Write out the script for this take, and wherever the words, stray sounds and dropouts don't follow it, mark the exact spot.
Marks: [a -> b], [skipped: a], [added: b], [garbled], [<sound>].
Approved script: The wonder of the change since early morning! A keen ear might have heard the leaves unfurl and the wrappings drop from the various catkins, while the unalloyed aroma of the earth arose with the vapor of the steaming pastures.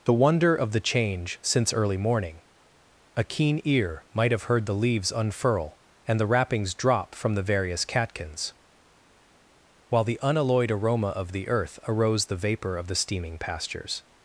The wonder of the change since early morning! A keen ear might have heard the leaves unfurl and the wrappings drop from the various catkins, while the unalloyed aroma of the earth arose [skipped: with] the vapor of the steaming pastures.